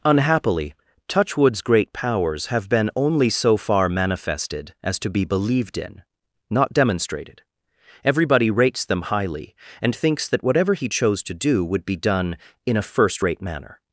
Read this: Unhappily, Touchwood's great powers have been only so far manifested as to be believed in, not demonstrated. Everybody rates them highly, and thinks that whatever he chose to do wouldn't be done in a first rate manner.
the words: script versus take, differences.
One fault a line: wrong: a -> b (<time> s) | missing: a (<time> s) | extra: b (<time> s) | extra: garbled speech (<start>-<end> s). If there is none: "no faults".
wrong: wouldn't -> would (11.6 s)